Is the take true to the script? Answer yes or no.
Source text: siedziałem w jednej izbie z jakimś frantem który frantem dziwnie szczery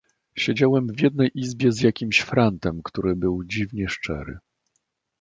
no